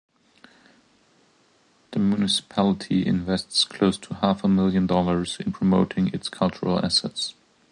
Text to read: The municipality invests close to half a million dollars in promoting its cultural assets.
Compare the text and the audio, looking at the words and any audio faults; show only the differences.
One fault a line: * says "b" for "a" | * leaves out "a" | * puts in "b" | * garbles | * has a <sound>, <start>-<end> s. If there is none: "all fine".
all fine